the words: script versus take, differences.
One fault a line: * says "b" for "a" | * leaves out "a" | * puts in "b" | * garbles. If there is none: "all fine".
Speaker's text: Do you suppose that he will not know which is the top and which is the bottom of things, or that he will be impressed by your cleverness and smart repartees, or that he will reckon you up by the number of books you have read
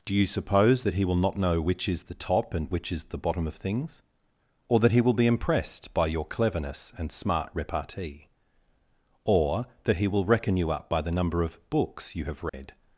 * says "repartee" for "repartees"